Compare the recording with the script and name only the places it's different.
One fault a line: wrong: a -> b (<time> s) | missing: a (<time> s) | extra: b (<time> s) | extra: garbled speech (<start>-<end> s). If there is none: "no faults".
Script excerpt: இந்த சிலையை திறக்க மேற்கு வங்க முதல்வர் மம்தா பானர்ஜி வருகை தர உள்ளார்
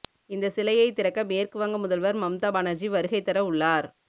no faults